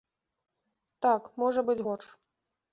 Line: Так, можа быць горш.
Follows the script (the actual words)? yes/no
yes